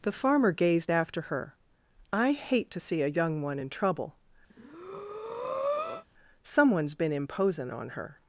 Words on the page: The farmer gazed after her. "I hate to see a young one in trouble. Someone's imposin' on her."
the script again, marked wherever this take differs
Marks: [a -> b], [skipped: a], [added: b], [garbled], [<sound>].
The farmer gazed after her. "I hate to see a young one in trouble. [breath] Someone's [added: been] imposin' on her."